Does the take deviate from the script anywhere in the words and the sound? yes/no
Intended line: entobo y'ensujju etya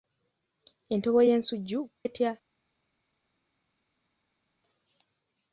no